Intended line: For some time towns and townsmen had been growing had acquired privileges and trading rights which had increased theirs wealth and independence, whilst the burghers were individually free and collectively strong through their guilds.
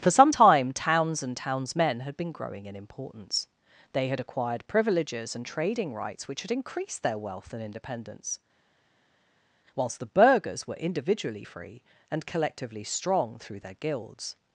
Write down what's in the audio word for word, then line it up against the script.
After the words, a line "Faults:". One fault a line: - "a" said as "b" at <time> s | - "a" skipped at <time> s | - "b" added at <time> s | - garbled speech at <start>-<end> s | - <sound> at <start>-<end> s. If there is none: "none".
For some time towns and townsmen had been growing in importance. They had acquired privileges and trading rights which had increased their wealth and independence, whilst the burghers were individually free and collectively strong through their guilds.
Faults:
- "in importance They" added at 2.7 s
- "theirs" said as "their" at 7.0 s